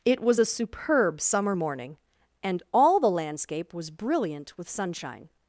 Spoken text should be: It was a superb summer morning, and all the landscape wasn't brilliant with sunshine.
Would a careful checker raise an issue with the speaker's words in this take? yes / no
yes